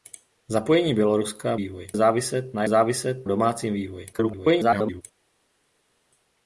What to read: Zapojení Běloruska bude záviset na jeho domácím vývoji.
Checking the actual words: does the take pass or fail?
fail